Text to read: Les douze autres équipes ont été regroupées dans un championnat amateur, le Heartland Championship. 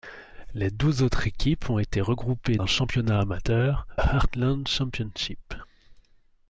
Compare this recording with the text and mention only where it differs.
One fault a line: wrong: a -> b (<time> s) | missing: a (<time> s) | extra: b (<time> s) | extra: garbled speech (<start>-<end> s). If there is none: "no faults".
missing: dans (2.6 s)
missing: le (3.9 s)